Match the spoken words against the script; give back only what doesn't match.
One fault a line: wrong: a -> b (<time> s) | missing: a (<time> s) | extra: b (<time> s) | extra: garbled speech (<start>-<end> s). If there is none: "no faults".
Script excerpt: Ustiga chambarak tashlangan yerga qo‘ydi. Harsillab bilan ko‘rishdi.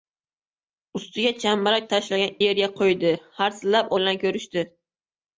no faults